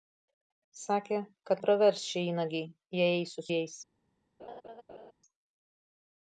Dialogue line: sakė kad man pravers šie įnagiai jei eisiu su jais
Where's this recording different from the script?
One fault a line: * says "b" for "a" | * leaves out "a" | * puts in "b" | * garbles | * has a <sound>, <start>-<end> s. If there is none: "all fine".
* leaves out "man"
* leaves out "su"
* has a laugh, 4.4-5.1 s